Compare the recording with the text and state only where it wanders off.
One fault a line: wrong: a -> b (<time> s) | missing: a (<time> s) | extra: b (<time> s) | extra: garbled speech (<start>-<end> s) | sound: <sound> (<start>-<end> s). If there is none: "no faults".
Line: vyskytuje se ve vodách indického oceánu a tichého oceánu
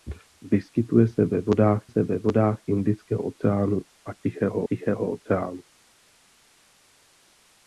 extra: se ve vodách (1.9 s)
extra: tichého (4.7 s)